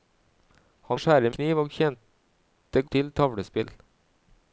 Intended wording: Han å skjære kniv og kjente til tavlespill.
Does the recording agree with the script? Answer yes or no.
yes